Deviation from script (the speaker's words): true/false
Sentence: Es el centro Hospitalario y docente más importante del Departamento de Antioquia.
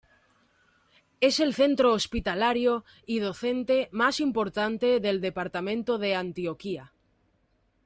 false